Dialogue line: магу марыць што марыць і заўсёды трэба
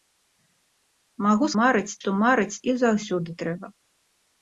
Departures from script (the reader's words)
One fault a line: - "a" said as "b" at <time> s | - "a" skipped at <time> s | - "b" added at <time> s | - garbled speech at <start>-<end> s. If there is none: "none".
none